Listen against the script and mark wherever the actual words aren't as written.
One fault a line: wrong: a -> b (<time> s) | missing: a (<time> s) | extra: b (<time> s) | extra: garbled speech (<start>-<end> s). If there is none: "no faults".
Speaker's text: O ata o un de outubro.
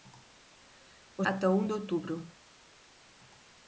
no faults